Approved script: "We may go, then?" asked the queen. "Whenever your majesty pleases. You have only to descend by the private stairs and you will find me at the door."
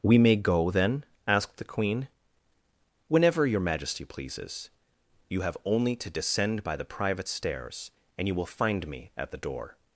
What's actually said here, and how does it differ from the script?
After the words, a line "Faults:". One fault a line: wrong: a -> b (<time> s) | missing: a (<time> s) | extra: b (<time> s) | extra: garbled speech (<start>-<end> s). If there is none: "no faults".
"We may go, then?" asked the queen. "Whenever your majesty pleases. You have only to descend by the private stairs and you will find me at the door."
Faults:
no faults